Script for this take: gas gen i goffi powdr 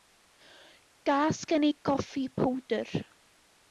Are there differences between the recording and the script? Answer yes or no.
no